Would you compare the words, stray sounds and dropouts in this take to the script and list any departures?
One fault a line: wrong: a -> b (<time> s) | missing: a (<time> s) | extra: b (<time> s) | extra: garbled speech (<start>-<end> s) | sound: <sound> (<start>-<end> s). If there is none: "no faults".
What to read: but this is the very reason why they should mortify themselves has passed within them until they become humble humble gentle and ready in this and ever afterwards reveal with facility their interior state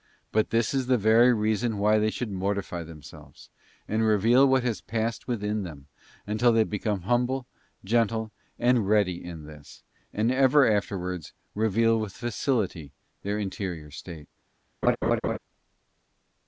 extra: and reveal what (3.9 s)
missing: humble (7.5 s)
sound: laugh (14.8-15.4 s)